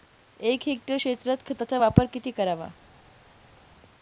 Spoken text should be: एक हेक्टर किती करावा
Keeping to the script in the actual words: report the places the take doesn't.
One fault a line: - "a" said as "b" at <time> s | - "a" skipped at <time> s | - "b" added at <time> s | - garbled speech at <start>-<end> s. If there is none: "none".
- "क्षेत्रात खताचा वापर" added at 0.9 s